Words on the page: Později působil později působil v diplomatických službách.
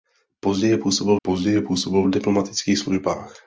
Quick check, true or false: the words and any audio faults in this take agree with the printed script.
true